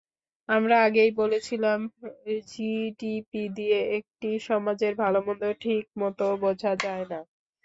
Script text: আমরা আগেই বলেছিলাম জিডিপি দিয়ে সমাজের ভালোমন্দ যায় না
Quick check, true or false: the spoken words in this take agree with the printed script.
false